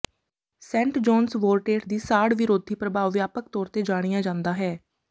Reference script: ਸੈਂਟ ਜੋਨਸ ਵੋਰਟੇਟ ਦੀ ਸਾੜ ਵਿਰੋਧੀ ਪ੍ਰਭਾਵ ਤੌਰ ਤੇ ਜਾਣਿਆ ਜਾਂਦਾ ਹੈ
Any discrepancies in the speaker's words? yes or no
yes